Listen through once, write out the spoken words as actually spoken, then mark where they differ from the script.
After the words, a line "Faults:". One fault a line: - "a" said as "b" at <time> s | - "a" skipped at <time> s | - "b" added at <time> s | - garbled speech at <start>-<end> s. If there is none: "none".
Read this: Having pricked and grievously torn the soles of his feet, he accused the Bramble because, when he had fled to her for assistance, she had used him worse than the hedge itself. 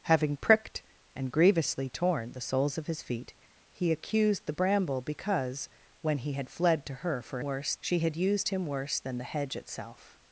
Having pricked and grievously torn the soles of his feet, he accused the Bramble because, when he had fled to her for worse, she had used him worse than the hedge itself.
Faults:
- "assistance" said as "worse" at 7.4 s